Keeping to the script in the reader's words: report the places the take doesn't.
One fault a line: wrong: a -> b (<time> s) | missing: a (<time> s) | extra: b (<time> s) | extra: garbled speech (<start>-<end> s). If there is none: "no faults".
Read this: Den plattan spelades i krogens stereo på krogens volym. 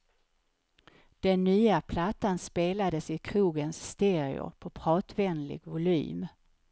extra: nya (1.4 s)
wrong: krogens -> pratvänlig (4.7 s)